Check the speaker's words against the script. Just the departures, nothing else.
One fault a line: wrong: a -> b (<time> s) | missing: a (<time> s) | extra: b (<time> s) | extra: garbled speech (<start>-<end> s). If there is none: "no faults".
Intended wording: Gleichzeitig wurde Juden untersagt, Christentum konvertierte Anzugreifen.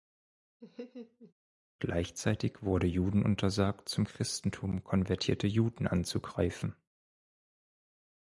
extra: zum (3.9 s)
extra: Juden (5.5 s)